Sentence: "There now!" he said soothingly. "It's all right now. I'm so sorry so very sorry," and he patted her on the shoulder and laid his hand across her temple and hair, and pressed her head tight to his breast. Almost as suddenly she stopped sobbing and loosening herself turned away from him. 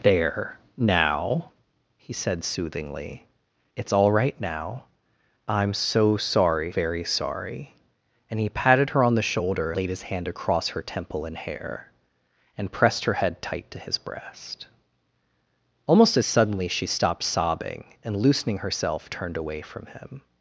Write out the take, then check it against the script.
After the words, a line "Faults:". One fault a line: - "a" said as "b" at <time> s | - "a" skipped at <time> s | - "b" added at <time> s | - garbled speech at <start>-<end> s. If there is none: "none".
"There now!" he said soothingly. "It's all right now. I'm so sorry very sorry," and he patted her on the shoulder laid his hand across her temple and hair, and pressed her head tight to his breast. Almost as suddenly she stopped sobbing and loosening herself turned away from him.
Faults:
- "so" skipped at 6.7 s
- "and" skipped at 9.7 s